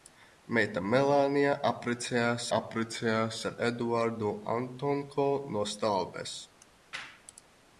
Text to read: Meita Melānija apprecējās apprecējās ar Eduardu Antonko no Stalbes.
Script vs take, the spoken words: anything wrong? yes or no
no